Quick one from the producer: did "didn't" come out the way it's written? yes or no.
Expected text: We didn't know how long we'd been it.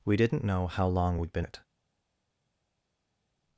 yes